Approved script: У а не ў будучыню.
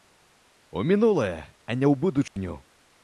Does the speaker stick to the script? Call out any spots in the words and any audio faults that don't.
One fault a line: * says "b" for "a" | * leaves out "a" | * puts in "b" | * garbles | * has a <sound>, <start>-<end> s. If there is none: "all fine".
* puts in "мінулае"
* has a dropout, 2.3-2.4 s